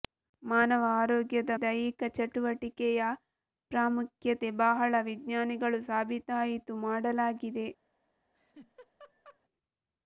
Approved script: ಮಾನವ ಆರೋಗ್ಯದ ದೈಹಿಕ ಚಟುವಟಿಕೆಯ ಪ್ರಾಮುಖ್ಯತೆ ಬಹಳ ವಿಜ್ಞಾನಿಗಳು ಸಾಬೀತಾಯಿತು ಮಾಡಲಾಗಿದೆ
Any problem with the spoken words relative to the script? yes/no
no